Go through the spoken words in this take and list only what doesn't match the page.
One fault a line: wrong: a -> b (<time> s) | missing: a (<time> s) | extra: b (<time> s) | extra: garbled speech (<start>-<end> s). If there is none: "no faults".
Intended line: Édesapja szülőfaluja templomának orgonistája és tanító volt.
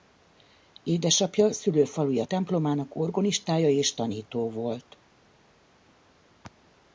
no faults